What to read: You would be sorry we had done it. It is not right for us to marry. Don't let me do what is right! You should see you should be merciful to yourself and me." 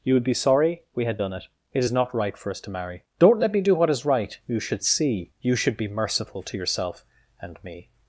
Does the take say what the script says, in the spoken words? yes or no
yes